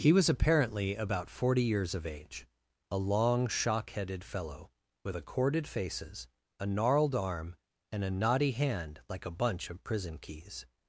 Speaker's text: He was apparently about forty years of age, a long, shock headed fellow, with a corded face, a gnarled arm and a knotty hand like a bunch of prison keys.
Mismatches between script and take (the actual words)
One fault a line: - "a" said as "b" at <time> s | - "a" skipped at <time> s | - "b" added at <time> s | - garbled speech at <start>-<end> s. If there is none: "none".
- "face" said as "faces" at 5.7 s